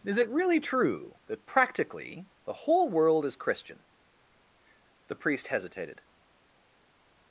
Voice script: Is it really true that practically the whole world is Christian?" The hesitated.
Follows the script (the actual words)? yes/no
no